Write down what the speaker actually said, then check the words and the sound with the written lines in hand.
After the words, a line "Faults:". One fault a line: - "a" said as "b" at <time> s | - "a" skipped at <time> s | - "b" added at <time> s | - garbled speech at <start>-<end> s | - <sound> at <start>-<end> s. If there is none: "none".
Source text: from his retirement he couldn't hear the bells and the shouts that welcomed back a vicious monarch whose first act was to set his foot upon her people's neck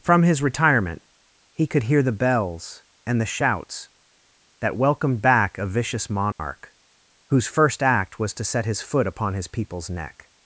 from his retirement he could hear the bells and the shouts that welcomed back a vicious monarch whose first act was to set his foot upon his people's neck
Faults:
- "couldn't" said as "could" at 1.7 s
- dropout at 6.3-6.4 s
- "her" said as "his" at 9.3 s